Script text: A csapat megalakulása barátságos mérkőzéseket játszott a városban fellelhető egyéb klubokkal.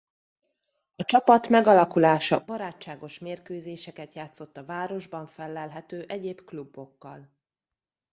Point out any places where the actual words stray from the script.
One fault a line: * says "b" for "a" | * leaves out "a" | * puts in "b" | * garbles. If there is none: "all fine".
all fine